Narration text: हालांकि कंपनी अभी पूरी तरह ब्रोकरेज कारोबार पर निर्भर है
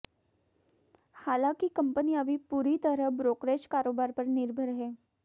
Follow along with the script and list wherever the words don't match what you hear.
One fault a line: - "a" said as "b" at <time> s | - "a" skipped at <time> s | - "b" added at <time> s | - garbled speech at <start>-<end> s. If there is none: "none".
none